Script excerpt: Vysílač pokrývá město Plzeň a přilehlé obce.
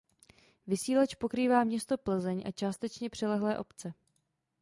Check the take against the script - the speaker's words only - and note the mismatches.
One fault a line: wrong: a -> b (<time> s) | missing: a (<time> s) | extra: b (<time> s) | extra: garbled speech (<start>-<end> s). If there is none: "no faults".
extra: částečně (2.5 s)